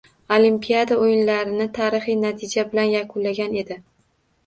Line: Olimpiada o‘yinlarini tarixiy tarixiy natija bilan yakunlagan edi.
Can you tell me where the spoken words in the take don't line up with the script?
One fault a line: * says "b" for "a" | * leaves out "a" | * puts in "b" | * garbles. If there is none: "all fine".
* leaves out "tarixiy"